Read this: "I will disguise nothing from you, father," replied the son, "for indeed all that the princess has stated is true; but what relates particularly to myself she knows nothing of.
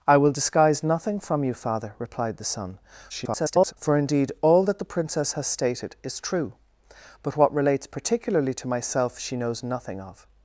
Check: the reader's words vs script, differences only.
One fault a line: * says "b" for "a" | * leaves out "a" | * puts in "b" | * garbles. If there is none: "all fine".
* garbles